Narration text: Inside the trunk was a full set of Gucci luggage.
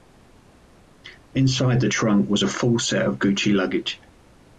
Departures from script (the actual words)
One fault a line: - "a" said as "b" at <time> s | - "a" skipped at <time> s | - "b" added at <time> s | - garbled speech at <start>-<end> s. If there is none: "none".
none